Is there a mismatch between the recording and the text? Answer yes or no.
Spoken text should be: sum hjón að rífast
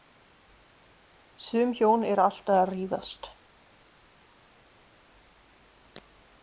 yes